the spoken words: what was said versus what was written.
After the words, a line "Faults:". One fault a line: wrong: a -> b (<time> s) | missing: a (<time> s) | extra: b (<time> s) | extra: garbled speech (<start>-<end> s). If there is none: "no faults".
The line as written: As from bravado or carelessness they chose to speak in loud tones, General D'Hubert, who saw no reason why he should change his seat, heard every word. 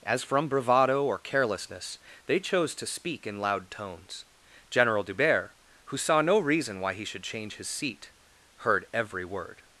As from bravado or carelessness they chose to speak in loud tones, General D'Hubert, who saw no reason why he should change his seat, heard every word.
Faults:
no faults